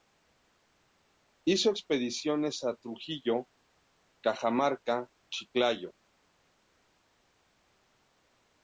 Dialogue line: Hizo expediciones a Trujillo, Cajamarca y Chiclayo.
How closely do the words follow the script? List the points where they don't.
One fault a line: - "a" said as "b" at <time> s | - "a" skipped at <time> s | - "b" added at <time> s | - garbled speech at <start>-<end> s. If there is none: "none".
- "y" skipped at 5.1 s